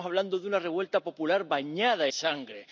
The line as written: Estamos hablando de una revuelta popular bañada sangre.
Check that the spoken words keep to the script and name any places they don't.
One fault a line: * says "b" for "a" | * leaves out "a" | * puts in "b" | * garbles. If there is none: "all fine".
all fine